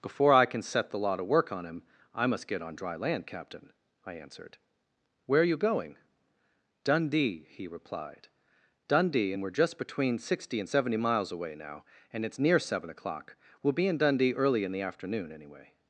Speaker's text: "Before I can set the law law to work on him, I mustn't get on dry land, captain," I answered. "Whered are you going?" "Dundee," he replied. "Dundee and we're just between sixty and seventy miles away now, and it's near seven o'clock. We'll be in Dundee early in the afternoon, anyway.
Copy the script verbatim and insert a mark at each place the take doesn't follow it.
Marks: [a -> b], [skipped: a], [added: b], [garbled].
"Before I can set the law [skipped: law] to work on him, I [mustn't -> must] get on dry land, captain," I answered. ["Whered -> Where] are you going?" "Dundee," he replied. "Dundee and we're just between sixty and seventy miles away now, and it's near seven o'clock. We'll be in Dundee early in the afternoon, anyway.